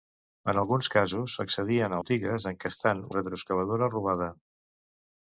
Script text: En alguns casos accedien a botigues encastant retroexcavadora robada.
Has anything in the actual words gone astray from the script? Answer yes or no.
no